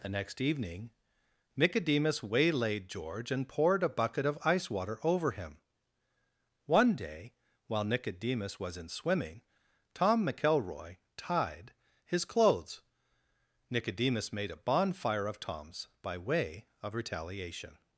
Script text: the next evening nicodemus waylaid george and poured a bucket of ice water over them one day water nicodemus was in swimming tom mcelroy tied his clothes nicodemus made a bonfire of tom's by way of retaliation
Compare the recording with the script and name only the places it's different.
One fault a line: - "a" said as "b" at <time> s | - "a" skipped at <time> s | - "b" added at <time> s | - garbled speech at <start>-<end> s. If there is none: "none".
- "them" said as "him" at 5.3 s
- "water" said as "while" at 7.7 s